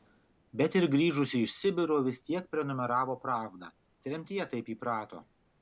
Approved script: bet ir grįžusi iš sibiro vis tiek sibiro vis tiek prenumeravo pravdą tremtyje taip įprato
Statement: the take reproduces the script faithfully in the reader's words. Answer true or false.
false